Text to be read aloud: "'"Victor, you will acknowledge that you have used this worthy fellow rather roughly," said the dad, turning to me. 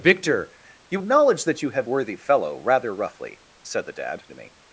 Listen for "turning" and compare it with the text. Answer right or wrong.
wrong